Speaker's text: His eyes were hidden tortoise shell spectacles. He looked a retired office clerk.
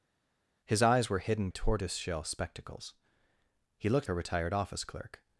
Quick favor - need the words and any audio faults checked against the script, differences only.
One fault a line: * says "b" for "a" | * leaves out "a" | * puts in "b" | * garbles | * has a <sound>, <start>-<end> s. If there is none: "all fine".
all fine